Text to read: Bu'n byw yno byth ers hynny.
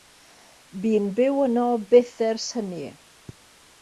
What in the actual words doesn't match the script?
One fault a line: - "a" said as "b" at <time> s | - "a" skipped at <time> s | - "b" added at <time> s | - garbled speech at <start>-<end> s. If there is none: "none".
none